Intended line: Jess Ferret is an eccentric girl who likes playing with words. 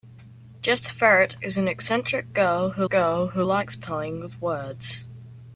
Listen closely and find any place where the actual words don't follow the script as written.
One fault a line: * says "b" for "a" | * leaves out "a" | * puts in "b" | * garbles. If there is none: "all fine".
* puts in "girl who"